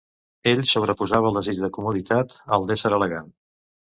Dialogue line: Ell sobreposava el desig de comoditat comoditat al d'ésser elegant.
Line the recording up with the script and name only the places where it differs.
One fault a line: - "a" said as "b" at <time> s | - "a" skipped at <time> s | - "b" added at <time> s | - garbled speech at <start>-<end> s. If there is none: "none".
- "comoditat" skipped at 2.4 s